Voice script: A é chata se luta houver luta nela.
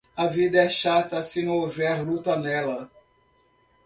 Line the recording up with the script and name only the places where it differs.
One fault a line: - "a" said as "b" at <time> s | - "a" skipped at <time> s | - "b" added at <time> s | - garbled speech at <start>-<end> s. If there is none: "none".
- "vida" added at 0.2 s
- "luta" said as "não" at 1.4 s